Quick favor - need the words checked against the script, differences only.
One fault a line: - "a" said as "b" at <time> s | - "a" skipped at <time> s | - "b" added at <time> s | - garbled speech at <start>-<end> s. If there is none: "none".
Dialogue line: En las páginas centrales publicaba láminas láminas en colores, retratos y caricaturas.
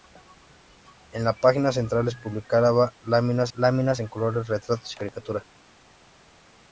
none